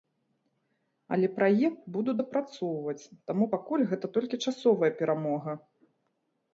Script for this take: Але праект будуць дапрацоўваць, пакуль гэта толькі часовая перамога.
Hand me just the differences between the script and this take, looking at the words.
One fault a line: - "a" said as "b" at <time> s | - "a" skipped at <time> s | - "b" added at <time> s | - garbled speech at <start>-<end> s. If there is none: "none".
- "таму" added at 3.3 s